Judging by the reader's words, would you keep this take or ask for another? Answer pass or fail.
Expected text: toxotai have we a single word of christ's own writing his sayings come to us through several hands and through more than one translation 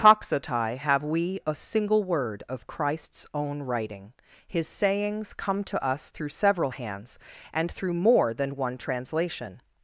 pass